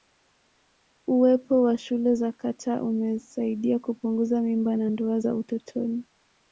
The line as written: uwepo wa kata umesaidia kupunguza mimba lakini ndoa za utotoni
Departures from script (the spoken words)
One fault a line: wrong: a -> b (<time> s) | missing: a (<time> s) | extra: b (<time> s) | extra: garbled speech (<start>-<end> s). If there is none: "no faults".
extra: shule za (1.8 s)
wrong: lakini -> na (4.8 s)